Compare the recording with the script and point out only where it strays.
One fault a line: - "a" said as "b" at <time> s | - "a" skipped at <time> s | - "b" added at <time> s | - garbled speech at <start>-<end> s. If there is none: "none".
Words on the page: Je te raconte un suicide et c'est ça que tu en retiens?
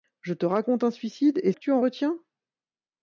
- "c'est ça" skipped at 1.5 s